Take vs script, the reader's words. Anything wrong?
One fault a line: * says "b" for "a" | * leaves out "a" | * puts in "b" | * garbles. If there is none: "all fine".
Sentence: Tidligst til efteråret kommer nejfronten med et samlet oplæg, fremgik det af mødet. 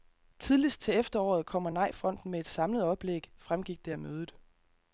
all fine